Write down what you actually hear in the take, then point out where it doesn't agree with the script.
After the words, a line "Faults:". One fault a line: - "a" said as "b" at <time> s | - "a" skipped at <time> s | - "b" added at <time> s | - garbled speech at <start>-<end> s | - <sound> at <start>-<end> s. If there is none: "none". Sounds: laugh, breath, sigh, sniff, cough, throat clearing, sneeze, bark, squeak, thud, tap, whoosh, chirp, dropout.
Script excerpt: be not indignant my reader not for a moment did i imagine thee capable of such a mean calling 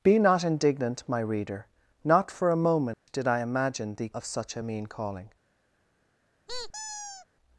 be not indignant my reader not for a moment did i imagine thee of such a mean calling
Faults:
- dropout at 2.9-3.1 s
- "capable" skipped at 4.1 s
- squeak at 6.5-7.3 s